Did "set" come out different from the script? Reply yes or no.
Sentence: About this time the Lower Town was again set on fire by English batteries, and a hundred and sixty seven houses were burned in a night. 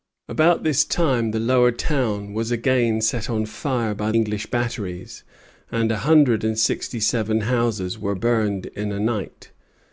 no